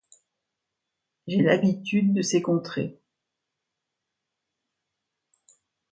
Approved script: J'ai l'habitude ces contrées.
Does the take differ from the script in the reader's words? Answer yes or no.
yes